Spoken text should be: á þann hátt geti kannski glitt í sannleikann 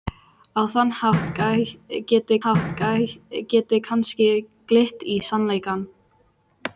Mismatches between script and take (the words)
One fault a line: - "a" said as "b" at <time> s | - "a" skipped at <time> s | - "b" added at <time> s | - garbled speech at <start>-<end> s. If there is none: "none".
- "hátt geti" added at 2.4 s